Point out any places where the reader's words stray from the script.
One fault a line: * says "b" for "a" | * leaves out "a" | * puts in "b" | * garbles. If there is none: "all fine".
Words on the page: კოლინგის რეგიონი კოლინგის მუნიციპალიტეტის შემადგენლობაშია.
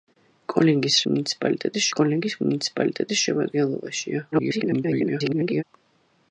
* says "მუნიციპალიტეტის" for "რეგიონი"
* garbles